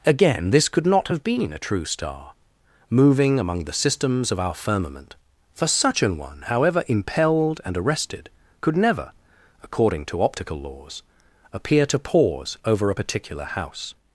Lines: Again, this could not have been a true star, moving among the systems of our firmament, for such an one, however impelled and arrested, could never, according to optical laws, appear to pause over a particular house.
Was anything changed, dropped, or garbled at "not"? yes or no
no